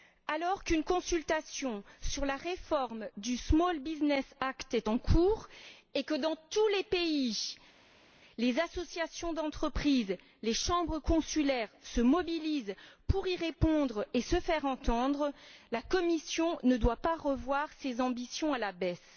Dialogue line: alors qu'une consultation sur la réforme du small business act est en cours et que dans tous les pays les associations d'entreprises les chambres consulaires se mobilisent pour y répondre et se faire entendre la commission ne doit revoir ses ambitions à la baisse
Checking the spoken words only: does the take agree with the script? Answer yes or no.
no